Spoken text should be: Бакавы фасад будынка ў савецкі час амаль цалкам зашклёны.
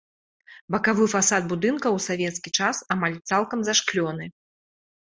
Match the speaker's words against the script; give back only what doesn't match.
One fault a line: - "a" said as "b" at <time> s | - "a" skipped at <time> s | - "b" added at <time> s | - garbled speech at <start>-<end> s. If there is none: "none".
none